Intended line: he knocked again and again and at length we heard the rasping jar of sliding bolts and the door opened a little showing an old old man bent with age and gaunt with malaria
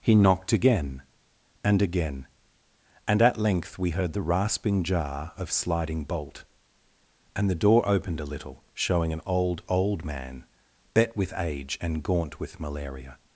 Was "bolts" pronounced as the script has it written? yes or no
no